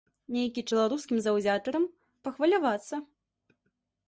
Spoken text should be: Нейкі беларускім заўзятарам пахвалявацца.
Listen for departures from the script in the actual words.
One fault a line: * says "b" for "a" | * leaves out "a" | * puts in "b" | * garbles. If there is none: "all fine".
all fine